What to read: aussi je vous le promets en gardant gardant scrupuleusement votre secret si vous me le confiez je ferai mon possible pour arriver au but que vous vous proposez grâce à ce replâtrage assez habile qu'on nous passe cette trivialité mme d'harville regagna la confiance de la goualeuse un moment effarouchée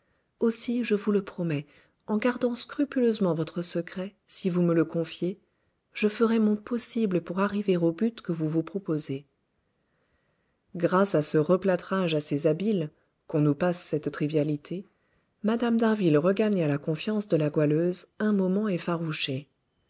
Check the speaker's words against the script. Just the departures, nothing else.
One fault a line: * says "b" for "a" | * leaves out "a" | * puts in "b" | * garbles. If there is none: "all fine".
* leaves out "gardant"